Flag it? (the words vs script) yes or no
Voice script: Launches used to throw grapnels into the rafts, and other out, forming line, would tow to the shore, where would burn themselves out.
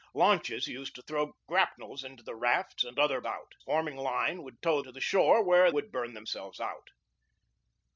no